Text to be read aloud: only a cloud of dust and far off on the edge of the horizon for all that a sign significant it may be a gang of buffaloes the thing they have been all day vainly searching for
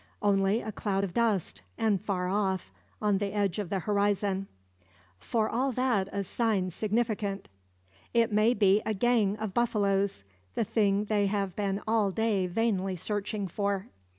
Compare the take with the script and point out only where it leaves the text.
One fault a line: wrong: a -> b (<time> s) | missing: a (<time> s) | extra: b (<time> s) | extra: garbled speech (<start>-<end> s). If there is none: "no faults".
no faults